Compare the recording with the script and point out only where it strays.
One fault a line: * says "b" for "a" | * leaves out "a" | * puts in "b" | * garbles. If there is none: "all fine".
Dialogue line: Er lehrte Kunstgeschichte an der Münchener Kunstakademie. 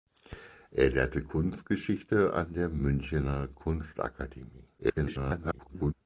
* garbles